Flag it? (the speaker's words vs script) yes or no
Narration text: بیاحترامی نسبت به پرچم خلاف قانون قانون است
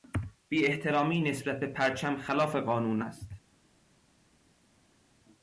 yes